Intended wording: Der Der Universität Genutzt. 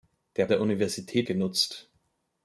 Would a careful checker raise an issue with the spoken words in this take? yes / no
no